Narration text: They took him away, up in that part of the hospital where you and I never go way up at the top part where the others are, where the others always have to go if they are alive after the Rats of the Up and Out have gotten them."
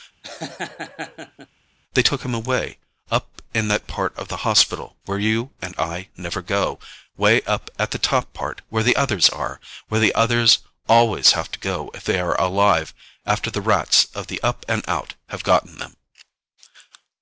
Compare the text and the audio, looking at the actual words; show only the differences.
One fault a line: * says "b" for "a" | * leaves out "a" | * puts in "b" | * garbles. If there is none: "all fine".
all fine